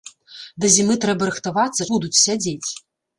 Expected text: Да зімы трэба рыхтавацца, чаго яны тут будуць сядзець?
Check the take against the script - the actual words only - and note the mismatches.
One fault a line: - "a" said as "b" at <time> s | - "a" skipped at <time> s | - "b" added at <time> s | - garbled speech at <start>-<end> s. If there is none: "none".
- "чаго яны тут" skipped at 1.9 s